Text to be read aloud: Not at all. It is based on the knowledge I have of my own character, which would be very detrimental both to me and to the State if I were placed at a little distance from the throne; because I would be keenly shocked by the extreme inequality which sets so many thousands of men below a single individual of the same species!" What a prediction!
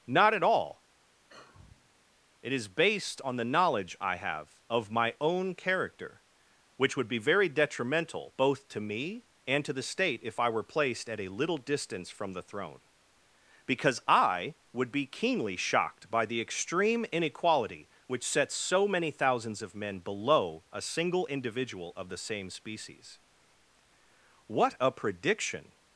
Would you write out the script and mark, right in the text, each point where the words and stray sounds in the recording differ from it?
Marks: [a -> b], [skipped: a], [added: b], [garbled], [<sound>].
Not at all. [sigh] It is based on the knowledge I have of my own character, which would be very detrimental both to me and to the State if I were placed at a little distance from the throne; because I would be keenly shocked by the extreme inequality which sets so many thousands of men below a single individual of the same species!" What a prediction!